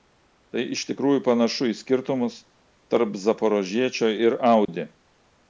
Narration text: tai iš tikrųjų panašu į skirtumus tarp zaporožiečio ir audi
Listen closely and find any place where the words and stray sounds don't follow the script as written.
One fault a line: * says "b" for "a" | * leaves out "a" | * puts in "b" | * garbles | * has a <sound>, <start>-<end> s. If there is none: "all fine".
* has a dropout, 4.6-4.7 s